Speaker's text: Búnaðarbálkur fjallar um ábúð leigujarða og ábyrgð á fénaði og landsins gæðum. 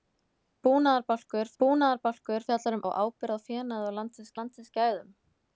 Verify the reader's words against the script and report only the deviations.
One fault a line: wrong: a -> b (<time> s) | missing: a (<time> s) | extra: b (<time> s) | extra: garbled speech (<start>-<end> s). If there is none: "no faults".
extra: búnaðarbálkur (1.6 s)
missing: ábúð leigujarða (2.8 s)
extra: landsins (4.4 s)